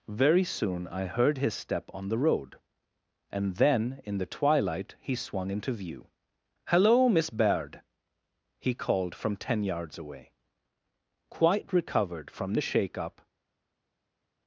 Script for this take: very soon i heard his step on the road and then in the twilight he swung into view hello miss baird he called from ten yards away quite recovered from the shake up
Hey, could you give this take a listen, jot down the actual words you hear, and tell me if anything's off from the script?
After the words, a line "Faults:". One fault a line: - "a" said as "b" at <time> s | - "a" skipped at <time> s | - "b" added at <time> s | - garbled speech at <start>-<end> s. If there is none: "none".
very soon i heard his step on the road and then in the twilight he swung into view hello miss baird he called from ten yards away quite recovered from the shake up
Faults:
none